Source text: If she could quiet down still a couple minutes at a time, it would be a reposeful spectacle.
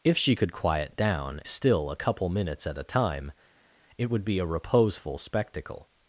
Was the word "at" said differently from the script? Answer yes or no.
no